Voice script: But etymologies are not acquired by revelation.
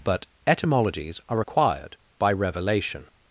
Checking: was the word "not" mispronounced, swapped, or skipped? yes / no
yes